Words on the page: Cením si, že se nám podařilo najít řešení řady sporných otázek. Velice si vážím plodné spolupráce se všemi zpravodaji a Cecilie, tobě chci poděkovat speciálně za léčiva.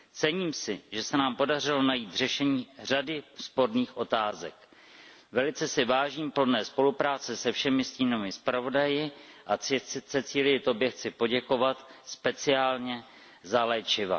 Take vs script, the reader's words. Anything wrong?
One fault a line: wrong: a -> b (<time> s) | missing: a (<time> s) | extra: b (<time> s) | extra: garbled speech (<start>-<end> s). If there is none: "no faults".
extra: stínovými (7.8 s)